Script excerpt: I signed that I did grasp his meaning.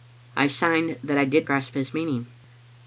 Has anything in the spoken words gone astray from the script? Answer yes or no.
no